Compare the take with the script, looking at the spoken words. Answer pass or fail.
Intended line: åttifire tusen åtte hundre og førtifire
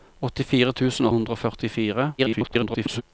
fail